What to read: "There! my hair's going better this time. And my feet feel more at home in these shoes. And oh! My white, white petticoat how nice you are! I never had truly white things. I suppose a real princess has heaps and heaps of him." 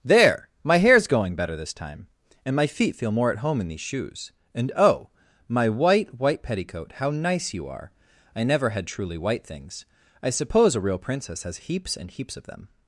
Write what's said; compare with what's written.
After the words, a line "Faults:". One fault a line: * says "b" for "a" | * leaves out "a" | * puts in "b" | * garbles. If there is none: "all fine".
"There! my hair's going better this time. And my feet feel more at home in these shoes. And oh! My white, white petticoat how nice you are! I never had truly white things. I suppose a real princess has heaps and heaps of them."
Faults:
* says "them" for "him"